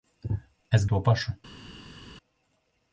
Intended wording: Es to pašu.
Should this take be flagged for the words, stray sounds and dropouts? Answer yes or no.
no